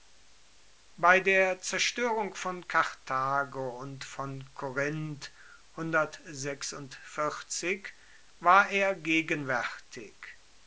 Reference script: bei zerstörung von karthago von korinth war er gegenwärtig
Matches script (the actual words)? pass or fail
fail